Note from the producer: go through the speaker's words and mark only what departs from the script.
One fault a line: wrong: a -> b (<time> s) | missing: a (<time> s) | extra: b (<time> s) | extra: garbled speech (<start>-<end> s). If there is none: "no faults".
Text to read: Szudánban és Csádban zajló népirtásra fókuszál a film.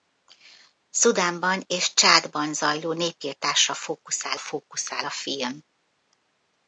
extra: fókuszál (4.4 s)